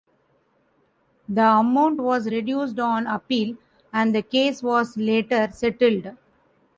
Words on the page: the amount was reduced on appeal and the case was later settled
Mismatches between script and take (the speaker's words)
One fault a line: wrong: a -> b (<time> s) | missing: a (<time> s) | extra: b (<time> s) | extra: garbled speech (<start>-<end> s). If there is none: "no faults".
no faults